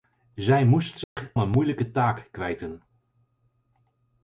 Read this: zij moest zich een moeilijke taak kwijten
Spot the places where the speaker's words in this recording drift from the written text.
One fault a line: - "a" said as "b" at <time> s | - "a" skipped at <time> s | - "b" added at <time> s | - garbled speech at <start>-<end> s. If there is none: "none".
none